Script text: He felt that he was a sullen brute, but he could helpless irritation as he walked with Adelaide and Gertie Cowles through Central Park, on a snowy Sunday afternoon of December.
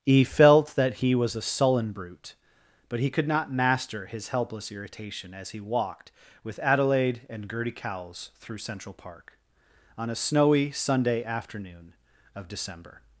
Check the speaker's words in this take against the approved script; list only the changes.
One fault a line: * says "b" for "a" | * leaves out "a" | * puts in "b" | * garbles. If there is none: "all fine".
* puts in "not master his"